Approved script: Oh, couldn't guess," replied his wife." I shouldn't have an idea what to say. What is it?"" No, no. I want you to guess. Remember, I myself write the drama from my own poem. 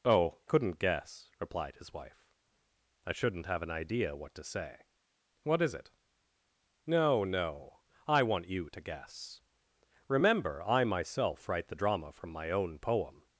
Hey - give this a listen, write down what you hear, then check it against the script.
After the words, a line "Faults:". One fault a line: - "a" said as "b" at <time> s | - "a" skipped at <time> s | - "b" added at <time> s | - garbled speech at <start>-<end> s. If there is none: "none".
Oh, couldn't guess," replied his wife." I shouldn't have an idea what to say. What is it?"" No, no. I want you to guess. Remember, I myself write the drama from my own poem.
Faults:
none